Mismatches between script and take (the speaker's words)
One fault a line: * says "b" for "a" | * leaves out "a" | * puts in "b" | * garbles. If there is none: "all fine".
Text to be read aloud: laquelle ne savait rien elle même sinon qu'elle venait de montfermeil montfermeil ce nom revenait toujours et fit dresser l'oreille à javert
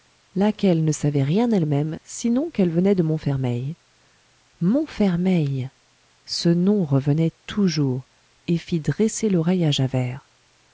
all fine